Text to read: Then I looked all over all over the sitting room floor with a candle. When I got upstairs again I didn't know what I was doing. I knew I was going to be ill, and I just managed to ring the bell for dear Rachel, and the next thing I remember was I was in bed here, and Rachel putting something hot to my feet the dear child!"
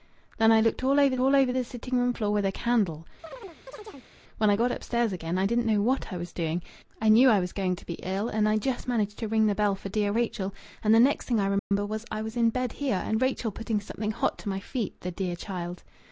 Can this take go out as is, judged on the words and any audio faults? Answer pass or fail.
fail